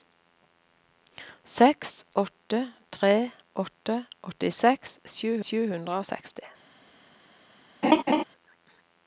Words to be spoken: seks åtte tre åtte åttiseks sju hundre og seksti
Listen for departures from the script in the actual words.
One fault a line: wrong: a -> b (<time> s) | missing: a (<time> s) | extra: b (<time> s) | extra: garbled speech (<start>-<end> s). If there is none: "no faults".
extra: sju (5.5 s)